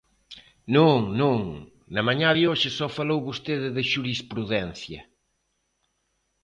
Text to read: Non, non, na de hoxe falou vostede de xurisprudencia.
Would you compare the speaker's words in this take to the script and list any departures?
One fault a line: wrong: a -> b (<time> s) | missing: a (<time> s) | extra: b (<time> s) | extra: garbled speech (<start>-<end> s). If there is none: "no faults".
extra: mañá (2.1 s)
extra: só (2.8 s)